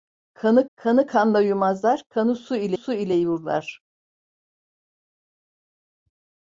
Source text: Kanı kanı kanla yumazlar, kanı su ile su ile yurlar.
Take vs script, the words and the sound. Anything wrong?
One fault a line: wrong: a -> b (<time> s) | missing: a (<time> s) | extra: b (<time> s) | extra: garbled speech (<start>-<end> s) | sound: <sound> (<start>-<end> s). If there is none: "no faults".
no faults